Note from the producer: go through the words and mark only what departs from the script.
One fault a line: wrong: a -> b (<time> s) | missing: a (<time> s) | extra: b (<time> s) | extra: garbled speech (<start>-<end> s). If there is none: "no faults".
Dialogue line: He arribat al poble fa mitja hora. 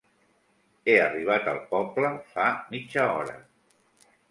no faults